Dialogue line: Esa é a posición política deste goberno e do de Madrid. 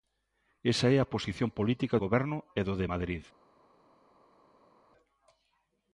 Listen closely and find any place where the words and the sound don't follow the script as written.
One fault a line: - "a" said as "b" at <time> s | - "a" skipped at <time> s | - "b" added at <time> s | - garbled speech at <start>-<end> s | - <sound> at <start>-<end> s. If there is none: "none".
- "deste" skipped at 1.9 s